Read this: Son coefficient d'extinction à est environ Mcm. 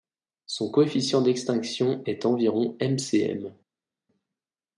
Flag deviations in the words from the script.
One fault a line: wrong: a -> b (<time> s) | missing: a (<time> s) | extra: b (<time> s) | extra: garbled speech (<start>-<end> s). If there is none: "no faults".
missing: à (2.0 s)